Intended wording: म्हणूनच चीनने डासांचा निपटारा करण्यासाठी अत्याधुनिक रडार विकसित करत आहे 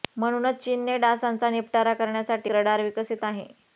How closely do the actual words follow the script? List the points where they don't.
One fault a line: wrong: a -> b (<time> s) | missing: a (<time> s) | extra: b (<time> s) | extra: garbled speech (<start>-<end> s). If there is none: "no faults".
missing: अत्याधुनिक (2.5 s)
missing: करत (3.2 s)